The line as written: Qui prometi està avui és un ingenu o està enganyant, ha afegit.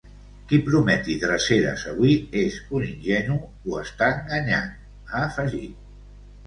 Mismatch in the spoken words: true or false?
true